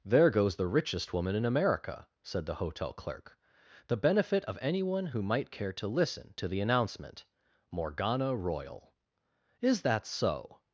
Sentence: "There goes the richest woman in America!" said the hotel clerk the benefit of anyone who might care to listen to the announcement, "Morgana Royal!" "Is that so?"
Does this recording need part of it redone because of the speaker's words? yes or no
no